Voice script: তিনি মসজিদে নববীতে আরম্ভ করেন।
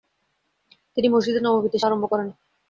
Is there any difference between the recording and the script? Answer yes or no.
no